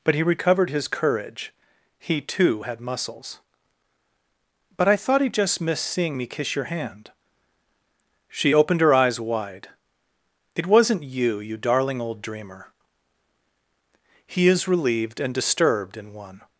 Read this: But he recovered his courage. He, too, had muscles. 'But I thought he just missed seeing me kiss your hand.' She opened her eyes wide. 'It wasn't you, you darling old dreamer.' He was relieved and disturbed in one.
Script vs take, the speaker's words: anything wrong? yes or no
yes